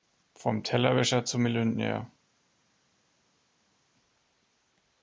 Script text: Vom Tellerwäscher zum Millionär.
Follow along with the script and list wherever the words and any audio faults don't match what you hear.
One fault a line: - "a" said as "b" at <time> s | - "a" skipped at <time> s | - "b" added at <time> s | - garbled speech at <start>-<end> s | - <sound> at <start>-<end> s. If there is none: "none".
none